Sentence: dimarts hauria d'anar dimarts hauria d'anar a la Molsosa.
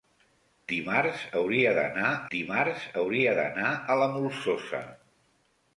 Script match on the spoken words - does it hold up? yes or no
yes